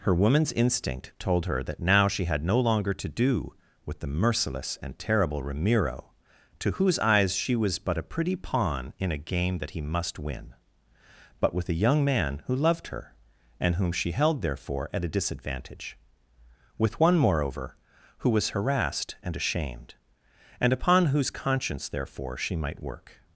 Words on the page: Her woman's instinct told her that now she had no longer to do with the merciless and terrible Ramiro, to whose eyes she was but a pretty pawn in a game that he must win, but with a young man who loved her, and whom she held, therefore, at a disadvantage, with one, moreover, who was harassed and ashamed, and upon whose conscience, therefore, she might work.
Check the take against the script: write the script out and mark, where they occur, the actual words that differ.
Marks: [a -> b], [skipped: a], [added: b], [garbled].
Her woman's instinct told her that now she had no longer to do with the merciless and terrible Ramiro, to whose eyes she was but a pretty pawn in a game that he must win, but with a young man who loved her, and whom she held, therefore, at a disadvantage, with one, moreover, who was harassed and ashamed, and upon whose conscience, therefore, she might work.